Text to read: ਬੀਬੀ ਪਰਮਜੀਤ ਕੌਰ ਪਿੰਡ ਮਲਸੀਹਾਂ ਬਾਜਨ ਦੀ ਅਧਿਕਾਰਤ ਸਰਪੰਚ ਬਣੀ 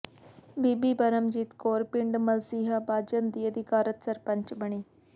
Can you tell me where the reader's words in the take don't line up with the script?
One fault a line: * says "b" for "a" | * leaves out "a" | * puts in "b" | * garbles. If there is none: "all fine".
all fine